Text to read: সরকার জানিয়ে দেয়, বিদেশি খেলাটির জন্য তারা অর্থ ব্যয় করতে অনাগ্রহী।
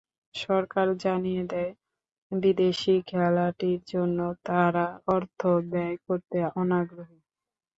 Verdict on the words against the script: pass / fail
pass